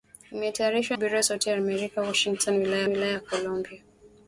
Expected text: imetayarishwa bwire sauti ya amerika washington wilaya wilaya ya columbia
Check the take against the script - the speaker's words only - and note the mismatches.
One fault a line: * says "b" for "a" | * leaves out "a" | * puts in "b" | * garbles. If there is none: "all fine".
all fine